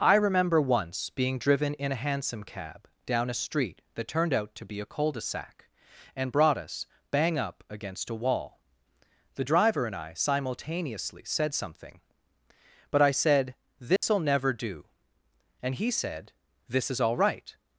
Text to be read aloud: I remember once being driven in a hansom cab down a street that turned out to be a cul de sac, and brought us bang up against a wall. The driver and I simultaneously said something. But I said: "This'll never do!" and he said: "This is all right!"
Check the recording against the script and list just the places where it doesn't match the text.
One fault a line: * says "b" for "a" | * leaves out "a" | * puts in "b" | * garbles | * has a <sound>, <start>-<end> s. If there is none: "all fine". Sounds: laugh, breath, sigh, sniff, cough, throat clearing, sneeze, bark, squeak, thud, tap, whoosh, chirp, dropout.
* has a dropout, 14.0-14.0 s